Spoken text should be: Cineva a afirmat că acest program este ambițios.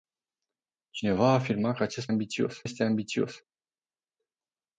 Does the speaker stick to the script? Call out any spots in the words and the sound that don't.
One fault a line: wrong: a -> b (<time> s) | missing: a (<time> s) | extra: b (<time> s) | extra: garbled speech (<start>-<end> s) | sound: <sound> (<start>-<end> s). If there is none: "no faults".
wrong: program -> ambițios (2.1 s)